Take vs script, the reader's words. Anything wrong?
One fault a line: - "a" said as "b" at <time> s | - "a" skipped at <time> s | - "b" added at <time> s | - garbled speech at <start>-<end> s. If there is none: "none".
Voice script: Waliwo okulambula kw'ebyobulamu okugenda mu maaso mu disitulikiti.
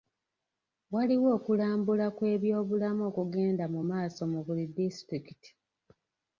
- "buli" added at 4.5 s